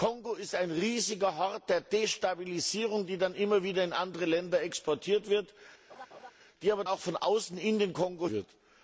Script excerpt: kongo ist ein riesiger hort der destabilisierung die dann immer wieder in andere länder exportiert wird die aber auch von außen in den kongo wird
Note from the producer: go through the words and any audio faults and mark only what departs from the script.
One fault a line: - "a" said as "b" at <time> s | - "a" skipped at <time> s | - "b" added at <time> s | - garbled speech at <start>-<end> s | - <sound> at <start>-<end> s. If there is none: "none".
- laugh at 5.9-6.3 s